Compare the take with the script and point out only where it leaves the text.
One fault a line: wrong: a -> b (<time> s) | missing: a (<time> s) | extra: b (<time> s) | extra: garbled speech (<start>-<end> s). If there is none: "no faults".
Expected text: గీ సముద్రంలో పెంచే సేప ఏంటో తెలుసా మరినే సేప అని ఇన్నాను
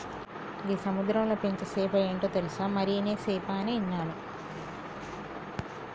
no faults